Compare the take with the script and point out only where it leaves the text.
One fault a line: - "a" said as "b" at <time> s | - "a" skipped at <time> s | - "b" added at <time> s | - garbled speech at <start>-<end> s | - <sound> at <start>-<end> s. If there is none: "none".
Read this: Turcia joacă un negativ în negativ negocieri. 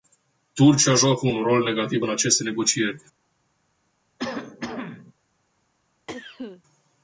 - "rol" added at 1.4 s
- "negativ" said as "aceste" at 2.1 s
- cough at 4.2-5.1 s
- cough at 6.1-6.6 s